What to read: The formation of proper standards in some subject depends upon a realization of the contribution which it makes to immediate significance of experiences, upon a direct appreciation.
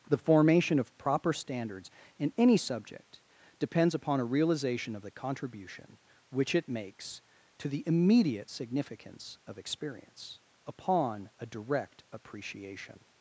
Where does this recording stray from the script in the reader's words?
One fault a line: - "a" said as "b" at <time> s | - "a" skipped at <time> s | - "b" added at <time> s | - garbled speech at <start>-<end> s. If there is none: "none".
- "some" said as "any" at 2.4 s
- "the" added at 7.7 s
- "experiences" said as "experience" at 9.6 s